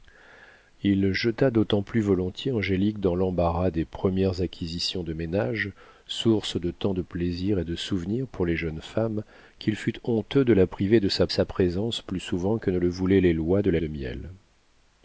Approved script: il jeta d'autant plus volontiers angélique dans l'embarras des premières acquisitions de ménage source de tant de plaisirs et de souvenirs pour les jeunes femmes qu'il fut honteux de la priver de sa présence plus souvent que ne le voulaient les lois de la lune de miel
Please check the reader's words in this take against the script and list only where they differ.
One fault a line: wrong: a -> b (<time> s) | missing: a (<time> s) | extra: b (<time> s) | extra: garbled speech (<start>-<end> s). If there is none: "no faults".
extra: sa (11.3 s)
missing: lune (13.8 s)